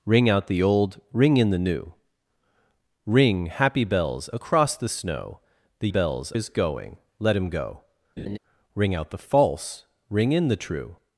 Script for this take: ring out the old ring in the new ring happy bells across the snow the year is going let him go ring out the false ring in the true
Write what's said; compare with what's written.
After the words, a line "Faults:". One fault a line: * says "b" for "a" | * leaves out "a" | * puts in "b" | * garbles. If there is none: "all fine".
ring out the old ring in the new ring happy bells across the snow the bells is going let him go ring out the false ring in the true
Faults:
* says "bells" for "year"